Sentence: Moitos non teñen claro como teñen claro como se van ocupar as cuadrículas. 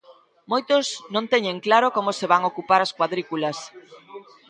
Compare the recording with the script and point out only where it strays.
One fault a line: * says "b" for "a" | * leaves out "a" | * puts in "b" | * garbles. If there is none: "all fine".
* leaves out "teñen claro como"